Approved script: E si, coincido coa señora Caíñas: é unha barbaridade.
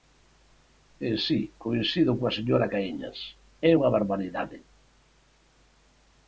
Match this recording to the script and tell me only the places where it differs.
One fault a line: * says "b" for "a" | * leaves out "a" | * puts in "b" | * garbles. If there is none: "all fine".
all fine